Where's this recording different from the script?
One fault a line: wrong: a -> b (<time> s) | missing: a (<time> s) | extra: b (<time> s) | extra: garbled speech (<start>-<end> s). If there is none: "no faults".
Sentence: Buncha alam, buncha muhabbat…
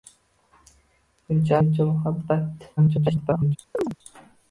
missing: alam (1.6 s)
extra: garbled speech (2.8-3.6 s)